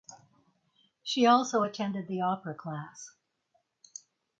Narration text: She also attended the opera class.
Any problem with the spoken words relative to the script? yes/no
no